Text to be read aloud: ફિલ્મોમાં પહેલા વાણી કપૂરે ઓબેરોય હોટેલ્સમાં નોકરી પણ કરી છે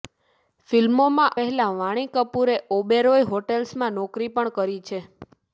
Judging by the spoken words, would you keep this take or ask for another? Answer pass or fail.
pass